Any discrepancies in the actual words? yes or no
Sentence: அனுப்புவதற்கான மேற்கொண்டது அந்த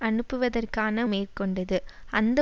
no